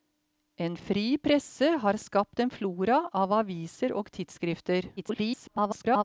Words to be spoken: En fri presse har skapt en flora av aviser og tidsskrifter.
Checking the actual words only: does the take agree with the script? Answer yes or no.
no